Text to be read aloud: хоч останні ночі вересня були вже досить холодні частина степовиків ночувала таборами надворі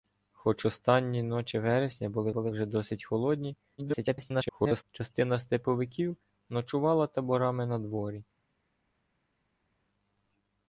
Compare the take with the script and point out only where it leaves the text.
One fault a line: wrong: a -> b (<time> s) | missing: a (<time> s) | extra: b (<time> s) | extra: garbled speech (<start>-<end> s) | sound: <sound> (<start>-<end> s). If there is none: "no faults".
extra: були (2.3 s)
extra: garbled speech (3.8-4.8 s)